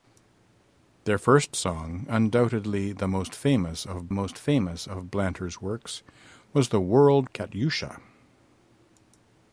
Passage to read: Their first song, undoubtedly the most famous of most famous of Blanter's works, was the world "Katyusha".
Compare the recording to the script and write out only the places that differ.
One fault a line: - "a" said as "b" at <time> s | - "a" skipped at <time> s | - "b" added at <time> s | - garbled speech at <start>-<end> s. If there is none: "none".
none